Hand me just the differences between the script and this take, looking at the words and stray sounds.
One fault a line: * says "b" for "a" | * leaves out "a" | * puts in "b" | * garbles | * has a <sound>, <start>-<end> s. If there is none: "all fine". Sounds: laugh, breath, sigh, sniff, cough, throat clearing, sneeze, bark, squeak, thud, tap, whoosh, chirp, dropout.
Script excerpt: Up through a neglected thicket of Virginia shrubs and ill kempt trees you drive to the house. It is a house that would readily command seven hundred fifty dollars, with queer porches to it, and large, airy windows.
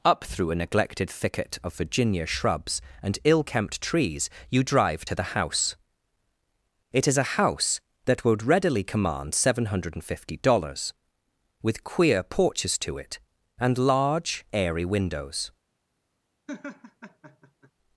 * has a laugh, 16.5-17.7 s